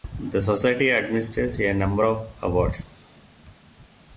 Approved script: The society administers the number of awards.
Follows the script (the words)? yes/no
no